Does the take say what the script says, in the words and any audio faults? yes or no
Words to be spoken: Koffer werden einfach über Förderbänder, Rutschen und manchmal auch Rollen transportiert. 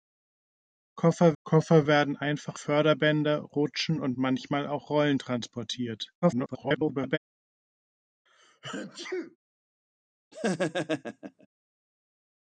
no